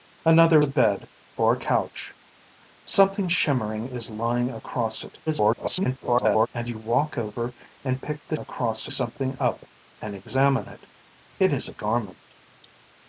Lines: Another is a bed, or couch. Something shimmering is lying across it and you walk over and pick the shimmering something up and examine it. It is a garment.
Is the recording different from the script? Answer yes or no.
yes